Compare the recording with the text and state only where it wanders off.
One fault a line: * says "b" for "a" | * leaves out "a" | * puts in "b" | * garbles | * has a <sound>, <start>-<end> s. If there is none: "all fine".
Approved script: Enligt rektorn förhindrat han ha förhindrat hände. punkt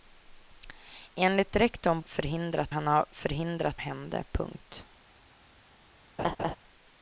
* has a laugh, 6.2-6.6 s